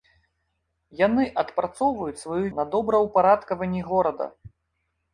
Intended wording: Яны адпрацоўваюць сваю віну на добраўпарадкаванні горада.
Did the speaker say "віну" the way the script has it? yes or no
no